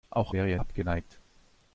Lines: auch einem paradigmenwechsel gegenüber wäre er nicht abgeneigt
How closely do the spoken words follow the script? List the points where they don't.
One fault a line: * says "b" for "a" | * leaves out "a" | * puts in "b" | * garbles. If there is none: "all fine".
* leaves out "einem paradigmenwechsel gegenüber"
* leaves out "nicht"